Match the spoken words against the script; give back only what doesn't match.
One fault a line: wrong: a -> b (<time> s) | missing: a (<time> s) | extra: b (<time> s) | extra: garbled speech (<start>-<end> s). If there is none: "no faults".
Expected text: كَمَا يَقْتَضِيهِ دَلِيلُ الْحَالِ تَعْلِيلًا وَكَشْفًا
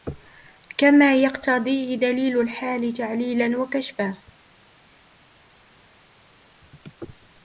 no faults